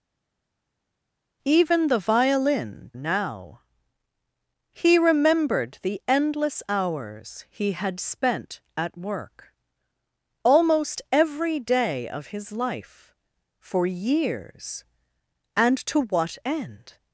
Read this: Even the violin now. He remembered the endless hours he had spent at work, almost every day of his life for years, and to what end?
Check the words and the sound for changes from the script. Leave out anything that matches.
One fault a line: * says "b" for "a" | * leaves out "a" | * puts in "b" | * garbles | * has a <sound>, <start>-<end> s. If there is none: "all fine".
all fine